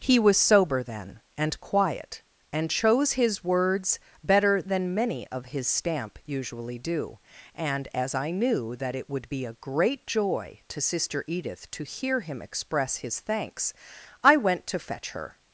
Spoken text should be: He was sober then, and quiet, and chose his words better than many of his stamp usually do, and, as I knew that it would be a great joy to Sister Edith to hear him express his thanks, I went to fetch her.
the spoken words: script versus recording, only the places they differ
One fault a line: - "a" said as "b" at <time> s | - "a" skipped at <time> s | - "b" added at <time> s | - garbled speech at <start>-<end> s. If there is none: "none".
none